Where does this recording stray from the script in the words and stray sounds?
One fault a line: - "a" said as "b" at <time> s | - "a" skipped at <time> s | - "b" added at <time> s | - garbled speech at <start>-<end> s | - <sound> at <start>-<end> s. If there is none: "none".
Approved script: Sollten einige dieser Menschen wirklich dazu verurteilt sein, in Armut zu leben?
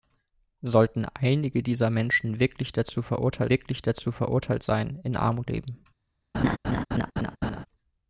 - "wirklich dazu verurteilt" added at 3.5 s
- "zu" skipped at 5.5 s
- laugh at 6.3-7.7 s